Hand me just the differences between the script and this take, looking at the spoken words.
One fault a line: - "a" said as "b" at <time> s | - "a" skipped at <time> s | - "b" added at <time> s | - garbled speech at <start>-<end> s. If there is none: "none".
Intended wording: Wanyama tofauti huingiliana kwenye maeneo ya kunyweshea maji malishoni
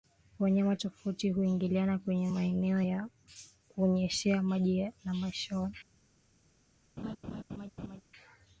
- "na" added at 5.0 s